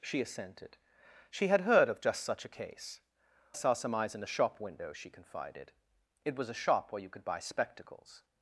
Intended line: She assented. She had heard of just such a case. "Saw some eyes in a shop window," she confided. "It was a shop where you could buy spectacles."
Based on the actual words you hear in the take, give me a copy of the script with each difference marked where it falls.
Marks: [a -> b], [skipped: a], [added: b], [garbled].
She assented. She had heard of just such a case. "Saw some eyes in a shop window," she confided. "It was a shop where you could buy spectacles."